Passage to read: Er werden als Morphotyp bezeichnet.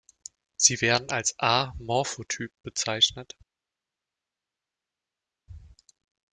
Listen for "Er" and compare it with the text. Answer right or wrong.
wrong